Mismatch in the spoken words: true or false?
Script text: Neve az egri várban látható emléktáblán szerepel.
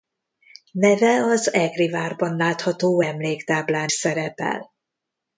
false